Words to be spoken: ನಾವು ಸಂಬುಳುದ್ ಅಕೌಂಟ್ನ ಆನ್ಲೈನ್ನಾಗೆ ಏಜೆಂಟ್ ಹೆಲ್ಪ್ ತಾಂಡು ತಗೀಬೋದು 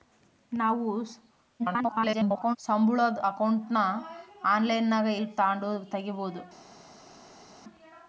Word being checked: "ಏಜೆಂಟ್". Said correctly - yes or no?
no